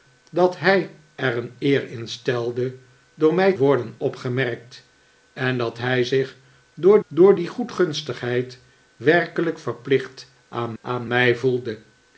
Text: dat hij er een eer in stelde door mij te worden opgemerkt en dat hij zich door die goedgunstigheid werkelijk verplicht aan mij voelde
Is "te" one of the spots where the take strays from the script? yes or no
yes